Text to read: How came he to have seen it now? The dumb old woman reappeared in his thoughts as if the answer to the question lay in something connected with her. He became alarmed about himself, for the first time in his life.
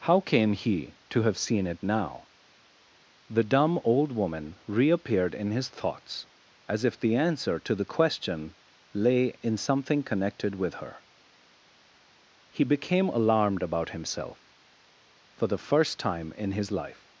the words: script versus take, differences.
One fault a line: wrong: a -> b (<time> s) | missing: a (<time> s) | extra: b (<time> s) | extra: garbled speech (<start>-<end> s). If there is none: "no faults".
no faults